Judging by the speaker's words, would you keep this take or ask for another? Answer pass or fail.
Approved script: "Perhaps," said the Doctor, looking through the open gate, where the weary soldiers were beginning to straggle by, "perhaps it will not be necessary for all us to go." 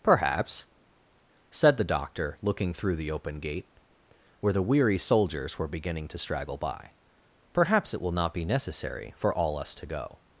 pass